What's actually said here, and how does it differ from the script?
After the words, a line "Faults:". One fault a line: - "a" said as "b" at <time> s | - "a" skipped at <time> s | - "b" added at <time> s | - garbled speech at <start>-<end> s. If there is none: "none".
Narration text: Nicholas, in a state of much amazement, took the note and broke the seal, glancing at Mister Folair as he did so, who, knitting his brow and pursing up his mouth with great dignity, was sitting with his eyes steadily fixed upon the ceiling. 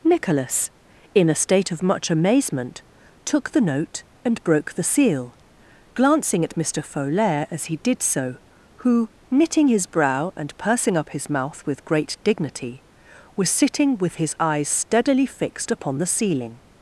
Nicholas, in a state of much amazement, took the note and broke the seal, glancing at Mister Folair as he did so, who, knitting his brow and pursing up his mouth with great dignity, was sitting with his eyes steadily fixed upon the ceiling.
Faults:
none